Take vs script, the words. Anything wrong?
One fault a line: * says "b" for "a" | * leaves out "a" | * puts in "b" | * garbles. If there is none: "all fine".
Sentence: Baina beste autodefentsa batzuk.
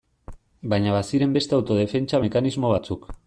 * puts in "baziren"
* puts in "mekanismo"